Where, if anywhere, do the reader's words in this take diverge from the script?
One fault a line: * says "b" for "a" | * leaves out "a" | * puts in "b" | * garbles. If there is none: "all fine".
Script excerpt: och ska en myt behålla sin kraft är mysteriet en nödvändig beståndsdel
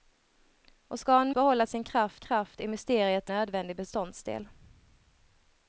* leaves out "myt"
* puts in "kraft"
* leaves out "en"